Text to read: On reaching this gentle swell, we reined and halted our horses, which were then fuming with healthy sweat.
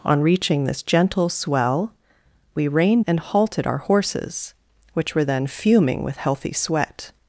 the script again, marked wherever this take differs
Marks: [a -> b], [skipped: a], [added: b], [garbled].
On reaching this gentle swell, we reined and halted our horses, which were then fuming with healthy sweat.